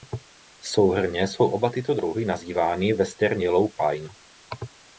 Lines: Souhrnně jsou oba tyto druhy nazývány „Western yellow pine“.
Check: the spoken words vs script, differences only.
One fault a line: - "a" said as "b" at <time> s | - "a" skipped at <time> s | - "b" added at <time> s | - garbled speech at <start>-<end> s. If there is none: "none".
none